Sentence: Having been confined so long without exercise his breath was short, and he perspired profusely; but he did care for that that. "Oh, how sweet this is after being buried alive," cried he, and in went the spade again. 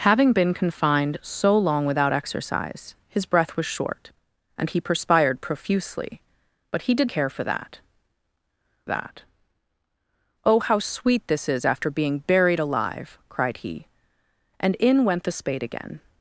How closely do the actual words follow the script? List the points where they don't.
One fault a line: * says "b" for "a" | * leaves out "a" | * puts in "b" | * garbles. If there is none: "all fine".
all fine